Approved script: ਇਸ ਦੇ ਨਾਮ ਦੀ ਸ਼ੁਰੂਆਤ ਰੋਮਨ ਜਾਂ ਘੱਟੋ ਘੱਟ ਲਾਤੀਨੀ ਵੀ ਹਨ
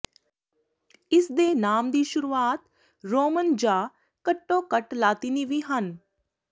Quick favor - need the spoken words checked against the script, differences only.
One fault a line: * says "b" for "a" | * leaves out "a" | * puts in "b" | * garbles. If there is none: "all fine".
all fine